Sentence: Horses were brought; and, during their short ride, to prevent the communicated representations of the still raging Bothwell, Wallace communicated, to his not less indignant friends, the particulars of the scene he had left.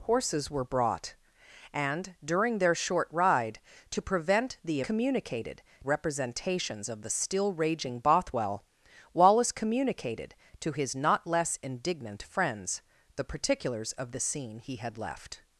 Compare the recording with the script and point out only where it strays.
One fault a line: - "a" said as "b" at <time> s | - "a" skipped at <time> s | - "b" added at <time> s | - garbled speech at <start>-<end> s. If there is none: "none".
none